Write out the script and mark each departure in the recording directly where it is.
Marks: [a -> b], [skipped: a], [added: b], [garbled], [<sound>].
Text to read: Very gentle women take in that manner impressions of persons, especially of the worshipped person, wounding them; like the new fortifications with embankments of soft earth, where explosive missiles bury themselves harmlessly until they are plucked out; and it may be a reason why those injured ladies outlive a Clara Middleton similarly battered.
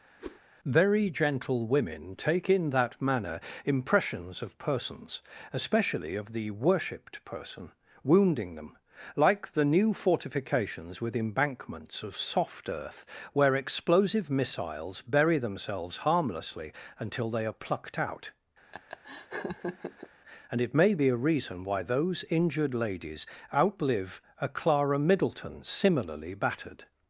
[whoosh] Very gentle women take in that manner impressions of persons, especially of the worshipped person, wounding them; like the new fortifications with embankments of soft earth, where explosive missiles bury themselves harmlessly until they are plucked out; [laugh] and it may be a reason why those injured ladies outlive a Clara Middleton similarly battered.